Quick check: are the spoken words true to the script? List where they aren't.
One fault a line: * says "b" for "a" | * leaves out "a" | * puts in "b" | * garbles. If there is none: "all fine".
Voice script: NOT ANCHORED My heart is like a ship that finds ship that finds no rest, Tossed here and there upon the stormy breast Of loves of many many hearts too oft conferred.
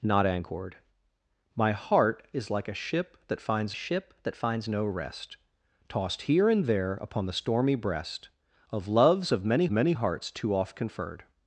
all fine